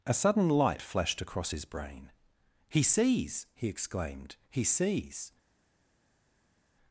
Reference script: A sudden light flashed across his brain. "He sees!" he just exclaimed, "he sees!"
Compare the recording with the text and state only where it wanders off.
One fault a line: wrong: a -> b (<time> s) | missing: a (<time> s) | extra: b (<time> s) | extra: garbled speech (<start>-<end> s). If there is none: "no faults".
missing: just (3.7 s)